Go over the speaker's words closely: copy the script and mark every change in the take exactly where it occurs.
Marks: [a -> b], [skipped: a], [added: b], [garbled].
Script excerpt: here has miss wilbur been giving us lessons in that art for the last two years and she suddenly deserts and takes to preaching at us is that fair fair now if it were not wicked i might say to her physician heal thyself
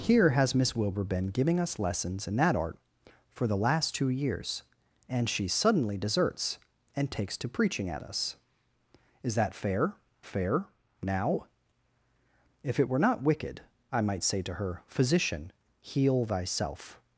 here has miss wilbur been giving us lessons in that art for the last two years and she suddenly deserts and takes to preaching at us is that fair fair now if it were not wicked i might say to her physician heal thyself